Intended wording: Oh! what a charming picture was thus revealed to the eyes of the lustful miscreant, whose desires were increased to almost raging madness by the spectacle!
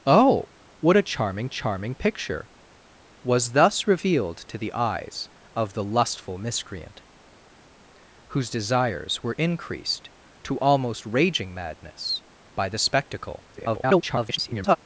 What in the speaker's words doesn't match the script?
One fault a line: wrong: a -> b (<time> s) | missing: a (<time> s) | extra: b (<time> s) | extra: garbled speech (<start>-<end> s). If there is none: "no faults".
extra: charming (1.5 s)
extra: garbled speech (13.5-14.8 s)